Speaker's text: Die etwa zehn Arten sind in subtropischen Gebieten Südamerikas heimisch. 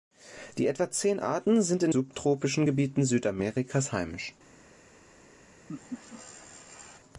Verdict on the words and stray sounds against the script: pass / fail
fail